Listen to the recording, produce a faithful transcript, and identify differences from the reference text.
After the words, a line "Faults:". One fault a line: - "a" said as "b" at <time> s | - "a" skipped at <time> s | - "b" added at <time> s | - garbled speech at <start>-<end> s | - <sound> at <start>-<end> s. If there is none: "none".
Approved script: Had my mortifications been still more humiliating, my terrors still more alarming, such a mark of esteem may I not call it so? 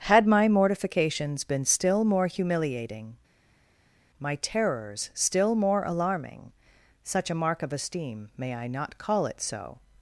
Had my mortifications been still more humiliating, my terrors still more alarming, such a mark of esteem may I not call it so?
Faults:
none